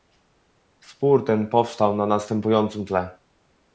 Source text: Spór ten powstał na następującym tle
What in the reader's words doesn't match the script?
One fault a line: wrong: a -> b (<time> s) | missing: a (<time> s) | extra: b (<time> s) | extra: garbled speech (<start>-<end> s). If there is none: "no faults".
no faults